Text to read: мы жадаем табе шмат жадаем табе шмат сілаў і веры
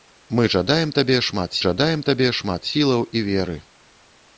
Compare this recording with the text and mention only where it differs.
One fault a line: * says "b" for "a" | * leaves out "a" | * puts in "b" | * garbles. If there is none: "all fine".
all fine